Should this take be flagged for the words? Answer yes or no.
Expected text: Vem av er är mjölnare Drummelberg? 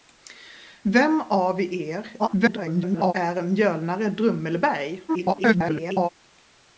yes